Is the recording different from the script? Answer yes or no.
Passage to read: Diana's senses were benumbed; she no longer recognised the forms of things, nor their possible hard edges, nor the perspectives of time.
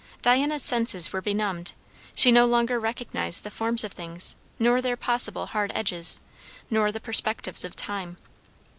no